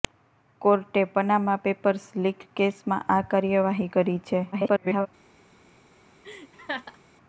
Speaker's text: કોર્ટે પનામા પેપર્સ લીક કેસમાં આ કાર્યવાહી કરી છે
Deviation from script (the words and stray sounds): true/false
true